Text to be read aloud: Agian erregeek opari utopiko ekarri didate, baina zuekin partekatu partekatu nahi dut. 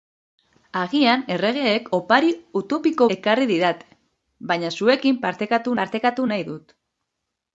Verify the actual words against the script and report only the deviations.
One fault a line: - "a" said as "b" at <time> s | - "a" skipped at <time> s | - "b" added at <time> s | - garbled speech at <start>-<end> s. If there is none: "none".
none